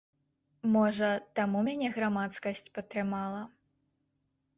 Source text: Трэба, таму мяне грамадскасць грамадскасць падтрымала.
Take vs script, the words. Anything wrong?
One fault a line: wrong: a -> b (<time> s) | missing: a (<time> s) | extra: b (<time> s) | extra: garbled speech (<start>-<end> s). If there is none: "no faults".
wrong: Трэба -> Можа (0.8 s)
missing: грамадскасць (2.6 s)